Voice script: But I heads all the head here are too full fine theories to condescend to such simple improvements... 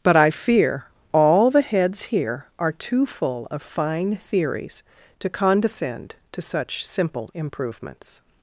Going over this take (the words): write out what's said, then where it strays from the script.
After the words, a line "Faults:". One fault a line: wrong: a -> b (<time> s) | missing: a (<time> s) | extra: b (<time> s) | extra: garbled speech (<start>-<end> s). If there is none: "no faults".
But I fear all the heads here are too full of fine theories to condescend to such simple improvements...
Faults:
wrong: heads -> fear (0.3 s)
wrong: head -> heads (1.6 s)
extra: of (3.5 s)